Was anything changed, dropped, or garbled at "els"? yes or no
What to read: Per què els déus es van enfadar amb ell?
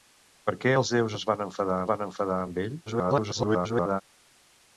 no